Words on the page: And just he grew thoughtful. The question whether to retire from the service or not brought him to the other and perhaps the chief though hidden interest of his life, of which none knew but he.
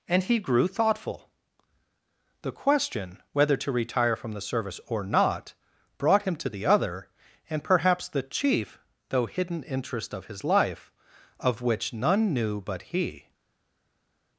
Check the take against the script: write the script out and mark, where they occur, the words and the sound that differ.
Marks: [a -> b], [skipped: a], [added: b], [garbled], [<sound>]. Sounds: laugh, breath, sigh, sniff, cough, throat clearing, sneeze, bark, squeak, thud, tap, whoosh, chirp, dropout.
And [skipped: just] he grew thoughtful. The question whether to retire from the service or not brought him to the other and perhaps the chief though hidden interest of his life, of which none knew but he.